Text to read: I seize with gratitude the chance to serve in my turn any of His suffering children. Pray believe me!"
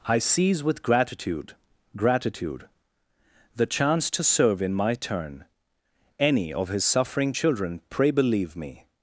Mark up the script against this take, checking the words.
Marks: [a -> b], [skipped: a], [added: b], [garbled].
I seize with gratitude [added: gratitude] the chance to serve in my turn any of His suffering children. Pray believe me!"